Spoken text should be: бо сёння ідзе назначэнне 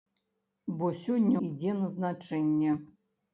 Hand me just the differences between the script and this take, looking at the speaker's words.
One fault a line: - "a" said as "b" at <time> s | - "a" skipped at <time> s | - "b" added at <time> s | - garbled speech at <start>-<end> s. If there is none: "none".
none